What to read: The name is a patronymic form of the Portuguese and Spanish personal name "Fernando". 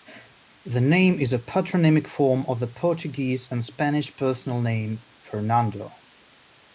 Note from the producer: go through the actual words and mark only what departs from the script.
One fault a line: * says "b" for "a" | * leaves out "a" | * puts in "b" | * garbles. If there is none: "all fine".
all fine